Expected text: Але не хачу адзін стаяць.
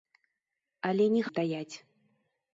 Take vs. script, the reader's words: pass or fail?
fail